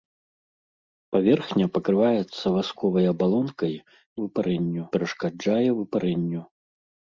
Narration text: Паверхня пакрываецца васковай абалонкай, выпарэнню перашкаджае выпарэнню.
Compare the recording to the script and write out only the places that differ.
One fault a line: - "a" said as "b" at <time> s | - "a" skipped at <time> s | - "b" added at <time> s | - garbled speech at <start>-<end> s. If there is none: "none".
none